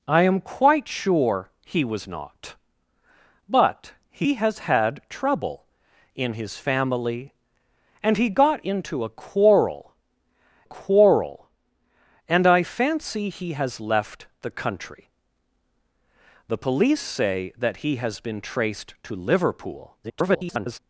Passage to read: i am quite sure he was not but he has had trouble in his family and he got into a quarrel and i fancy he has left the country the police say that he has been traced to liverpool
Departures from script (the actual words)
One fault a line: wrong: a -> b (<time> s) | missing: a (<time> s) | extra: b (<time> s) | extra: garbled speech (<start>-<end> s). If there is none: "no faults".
extra: quarrel (10.6 s)
extra: garbled speech (20.0-20.8 s)